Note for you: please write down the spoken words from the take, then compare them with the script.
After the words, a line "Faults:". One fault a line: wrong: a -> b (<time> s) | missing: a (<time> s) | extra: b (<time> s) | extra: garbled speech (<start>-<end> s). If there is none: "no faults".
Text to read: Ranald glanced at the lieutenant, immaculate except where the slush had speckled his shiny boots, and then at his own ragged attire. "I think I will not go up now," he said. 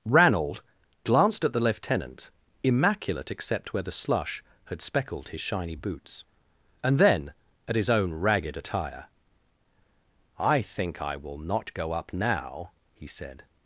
Ranald glanced at the lieutenant, immaculate except where the slush had speckled his shiny boots, and then at his own ragged attire. "I think I will not go up now," he said.
Faults:
no faults